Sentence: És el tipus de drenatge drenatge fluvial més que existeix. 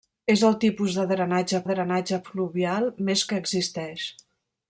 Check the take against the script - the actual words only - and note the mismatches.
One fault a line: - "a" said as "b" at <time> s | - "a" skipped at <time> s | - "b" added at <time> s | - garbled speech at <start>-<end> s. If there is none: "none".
none